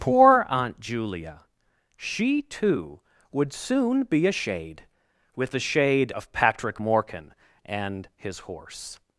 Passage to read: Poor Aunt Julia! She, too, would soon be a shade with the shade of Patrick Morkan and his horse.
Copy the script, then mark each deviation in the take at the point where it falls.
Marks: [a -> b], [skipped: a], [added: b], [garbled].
Poor Aunt Julia! She, too, would soon be a shade with the shade of Patrick Morkan and his horse.